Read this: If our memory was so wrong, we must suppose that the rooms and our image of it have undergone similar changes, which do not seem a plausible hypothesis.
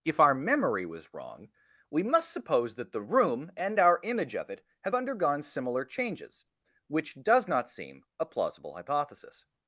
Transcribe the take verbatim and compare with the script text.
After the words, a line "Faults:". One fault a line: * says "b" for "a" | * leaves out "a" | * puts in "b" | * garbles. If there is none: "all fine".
If our memory was wrong, we must suppose that the room and our image of it have undergone similar changes, which does not seem a plausible hypothesis.
Faults:
* leaves out "so"
* says "room" for "rooms"
* says "does" for "do"